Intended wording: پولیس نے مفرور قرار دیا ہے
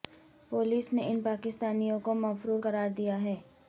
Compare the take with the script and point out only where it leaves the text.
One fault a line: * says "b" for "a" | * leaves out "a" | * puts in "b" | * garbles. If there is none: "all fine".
* puts in "ان پاکستانیوں کو"